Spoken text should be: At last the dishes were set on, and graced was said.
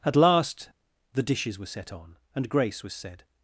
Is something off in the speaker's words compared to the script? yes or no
yes